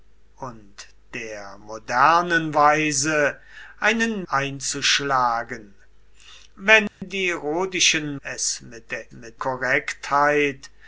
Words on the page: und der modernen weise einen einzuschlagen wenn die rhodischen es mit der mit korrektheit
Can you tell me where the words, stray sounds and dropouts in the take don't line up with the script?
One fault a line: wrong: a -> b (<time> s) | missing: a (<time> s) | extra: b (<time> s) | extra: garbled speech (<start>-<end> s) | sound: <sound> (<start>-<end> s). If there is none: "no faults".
sound: dropout (6.9-7.0 s)